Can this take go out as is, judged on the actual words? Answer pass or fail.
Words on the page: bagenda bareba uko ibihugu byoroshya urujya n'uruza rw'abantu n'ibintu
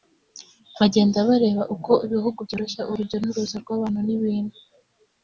pass